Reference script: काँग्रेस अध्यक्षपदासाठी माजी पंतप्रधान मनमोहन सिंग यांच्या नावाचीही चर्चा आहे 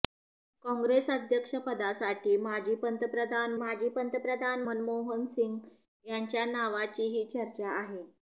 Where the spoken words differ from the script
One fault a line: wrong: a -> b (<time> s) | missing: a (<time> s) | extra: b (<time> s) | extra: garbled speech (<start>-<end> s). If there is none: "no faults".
extra: माजी पंतप्रधान (3.6 s)